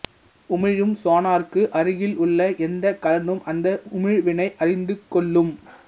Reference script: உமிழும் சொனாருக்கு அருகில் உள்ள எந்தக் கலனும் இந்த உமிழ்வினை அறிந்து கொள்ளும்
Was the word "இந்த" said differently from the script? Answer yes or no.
yes